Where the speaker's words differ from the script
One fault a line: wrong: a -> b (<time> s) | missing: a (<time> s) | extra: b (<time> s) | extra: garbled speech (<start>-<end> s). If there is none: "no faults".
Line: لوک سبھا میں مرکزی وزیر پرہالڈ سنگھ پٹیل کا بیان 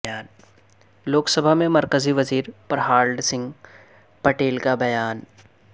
no faults